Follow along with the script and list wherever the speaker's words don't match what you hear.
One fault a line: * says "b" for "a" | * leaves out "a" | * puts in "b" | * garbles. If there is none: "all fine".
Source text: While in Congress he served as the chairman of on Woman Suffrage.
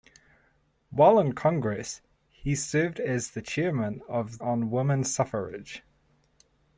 all fine